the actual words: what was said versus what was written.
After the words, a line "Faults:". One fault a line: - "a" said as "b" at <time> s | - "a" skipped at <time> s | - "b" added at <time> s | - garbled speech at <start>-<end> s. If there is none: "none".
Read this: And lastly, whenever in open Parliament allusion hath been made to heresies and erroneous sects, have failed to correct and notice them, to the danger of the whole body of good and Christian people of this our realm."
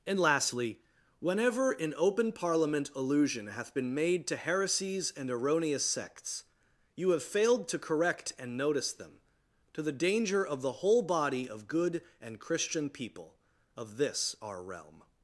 And lastly, whenever in open Parliament allusion hath been made to heresies and erroneous sects, you have failed to correct and notice them, to the danger of the whole body of good and Christian people of this our realm."
Faults:
- "you" added at 7.0 s